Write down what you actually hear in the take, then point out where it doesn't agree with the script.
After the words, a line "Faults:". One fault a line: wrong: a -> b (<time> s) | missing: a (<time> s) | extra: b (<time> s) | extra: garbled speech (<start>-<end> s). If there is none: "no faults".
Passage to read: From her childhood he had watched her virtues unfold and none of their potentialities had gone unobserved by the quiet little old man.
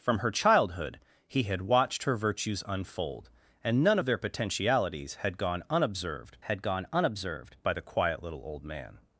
From her childhood he had watched her virtues unfold and none of their potentialities had gone unobserved had gone unobserved by the quiet little old man.
Faults:
extra: had gone unobserved (6.4 s)